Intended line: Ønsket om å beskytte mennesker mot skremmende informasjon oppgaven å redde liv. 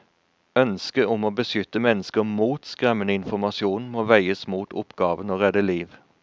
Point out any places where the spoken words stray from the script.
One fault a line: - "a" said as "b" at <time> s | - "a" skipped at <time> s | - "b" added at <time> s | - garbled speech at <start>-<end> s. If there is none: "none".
- "må veies mot" added at 3.9 s